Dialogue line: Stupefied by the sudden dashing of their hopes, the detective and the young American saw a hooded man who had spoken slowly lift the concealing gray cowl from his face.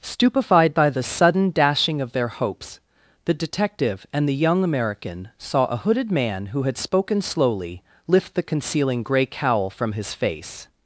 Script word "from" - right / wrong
right